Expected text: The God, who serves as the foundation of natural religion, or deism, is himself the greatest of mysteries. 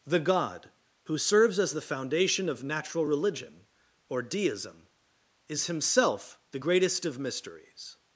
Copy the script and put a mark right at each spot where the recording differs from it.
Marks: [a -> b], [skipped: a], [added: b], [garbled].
The God, who serves as the foundation of natural religion, or deism, is himself the greatest of mysteries.